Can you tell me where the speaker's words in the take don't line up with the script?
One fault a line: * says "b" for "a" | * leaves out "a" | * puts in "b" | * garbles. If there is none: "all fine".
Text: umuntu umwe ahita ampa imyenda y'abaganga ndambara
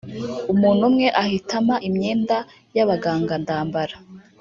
all fine